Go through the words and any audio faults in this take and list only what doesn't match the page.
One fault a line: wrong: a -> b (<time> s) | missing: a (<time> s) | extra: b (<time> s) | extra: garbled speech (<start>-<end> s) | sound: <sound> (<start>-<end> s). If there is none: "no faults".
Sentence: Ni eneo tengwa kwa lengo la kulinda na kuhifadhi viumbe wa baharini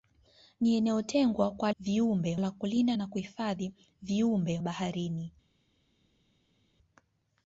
wrong: lengo -> viumbe (1.8 s)
missing: wa (4.6 s)